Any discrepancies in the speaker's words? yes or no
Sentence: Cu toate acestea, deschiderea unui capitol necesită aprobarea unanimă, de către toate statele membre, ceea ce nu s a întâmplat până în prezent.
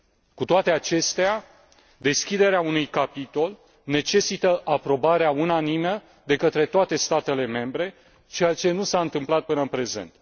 no